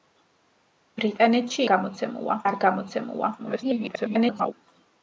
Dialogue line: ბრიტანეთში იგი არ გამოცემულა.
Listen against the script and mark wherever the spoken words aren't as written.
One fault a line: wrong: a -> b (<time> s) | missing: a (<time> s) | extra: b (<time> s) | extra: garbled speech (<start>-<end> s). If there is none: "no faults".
wrong: იგი -> გამოცემულა (1.7 s)
extra: garbled speech (3.4-4.5 s)